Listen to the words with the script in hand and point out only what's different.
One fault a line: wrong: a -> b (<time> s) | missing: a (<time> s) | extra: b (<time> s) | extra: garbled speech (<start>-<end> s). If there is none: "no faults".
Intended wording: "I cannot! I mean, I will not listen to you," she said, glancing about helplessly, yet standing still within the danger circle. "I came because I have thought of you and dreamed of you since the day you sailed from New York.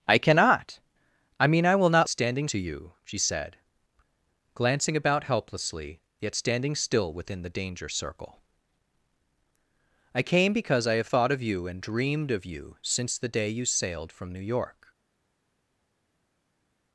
wrong: listen -> standing (2.1 s)